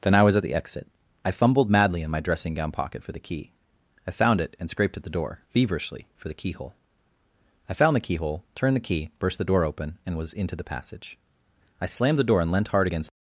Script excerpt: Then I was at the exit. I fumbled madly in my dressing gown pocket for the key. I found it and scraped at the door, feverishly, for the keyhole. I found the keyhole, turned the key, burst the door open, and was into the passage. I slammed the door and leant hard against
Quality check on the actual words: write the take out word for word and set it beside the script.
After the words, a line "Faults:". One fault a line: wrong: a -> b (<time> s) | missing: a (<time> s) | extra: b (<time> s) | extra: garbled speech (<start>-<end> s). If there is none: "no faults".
Then I was at the exit. I fumbled madly in my dressing gown pocket for the key. I found it and scraped at the door, feverishly, for the keyhole. I found the keyhole, turned the key, burst the door open, and was into the passage. I slammed the door and leant hard against
Faults:
no faults